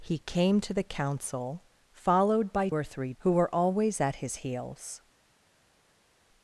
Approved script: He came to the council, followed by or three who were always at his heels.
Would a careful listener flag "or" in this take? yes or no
no